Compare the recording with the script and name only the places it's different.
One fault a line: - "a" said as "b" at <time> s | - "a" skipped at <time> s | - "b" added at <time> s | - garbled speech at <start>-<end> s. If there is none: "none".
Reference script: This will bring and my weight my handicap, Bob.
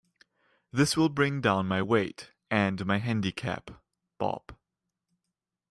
- "and" said as "down" at 1.4 s
- "and" added at 2.5 s